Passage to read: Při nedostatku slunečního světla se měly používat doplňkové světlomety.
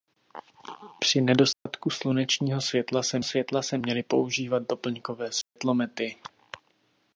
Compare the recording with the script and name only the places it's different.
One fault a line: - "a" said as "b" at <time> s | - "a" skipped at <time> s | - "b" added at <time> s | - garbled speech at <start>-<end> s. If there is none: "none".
- "světla se" added at 3.2 s